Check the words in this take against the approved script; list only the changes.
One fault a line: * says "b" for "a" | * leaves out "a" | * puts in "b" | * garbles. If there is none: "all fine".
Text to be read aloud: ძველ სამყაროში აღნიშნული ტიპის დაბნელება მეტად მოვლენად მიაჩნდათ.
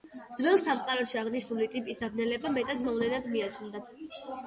all fine